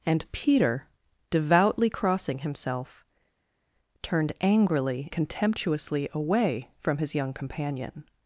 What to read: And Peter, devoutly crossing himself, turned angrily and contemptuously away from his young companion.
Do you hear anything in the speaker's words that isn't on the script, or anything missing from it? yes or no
yes